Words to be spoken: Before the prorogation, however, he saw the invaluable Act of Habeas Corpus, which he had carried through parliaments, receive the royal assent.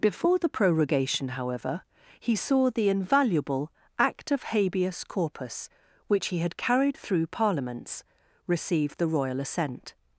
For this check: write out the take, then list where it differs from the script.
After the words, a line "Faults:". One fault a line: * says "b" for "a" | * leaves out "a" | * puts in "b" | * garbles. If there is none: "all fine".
Before the prorogation, however, he saw the invaluable Act of Habeas Corpus, which he had carried through parliaments, receive the royal assent.
Faults:
all fine